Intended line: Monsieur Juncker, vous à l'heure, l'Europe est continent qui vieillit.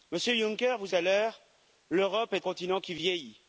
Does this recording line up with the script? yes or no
yes